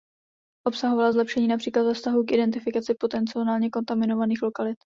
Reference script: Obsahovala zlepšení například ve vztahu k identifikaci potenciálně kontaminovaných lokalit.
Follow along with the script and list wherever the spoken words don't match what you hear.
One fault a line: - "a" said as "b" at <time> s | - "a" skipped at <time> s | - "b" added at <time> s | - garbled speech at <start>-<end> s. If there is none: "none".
none